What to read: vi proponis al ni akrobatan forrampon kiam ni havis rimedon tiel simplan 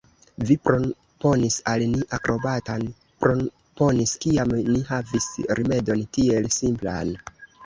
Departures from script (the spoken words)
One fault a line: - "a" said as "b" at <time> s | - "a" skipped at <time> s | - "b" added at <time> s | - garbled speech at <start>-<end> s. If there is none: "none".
- "forrampon" said as "proponis" at 3.2 s